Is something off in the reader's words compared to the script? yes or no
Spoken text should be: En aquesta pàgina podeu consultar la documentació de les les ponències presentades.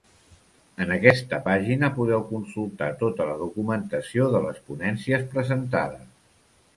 yes